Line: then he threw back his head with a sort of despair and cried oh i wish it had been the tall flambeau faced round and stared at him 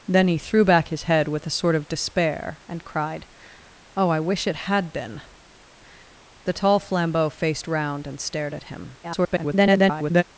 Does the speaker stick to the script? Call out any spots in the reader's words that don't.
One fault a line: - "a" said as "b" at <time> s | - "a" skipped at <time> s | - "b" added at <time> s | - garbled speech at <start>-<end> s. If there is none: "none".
- garbled speech at 9.0-10.2 s